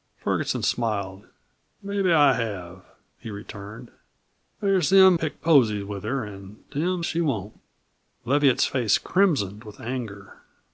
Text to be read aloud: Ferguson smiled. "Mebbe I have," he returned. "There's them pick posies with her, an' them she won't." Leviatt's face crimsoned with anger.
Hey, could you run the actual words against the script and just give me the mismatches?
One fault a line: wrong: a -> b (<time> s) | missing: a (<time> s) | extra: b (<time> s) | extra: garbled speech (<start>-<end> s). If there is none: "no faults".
no faults